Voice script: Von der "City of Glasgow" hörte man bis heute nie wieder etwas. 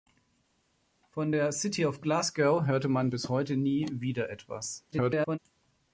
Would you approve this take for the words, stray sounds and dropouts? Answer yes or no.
no